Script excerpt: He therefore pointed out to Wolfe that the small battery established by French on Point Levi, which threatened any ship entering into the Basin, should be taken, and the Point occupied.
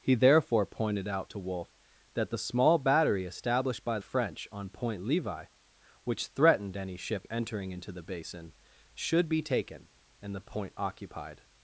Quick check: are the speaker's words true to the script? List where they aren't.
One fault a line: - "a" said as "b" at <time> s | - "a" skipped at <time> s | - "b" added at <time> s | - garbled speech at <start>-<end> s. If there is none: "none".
none